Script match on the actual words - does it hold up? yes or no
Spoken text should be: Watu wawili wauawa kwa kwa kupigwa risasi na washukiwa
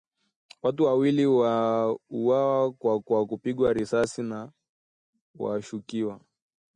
yes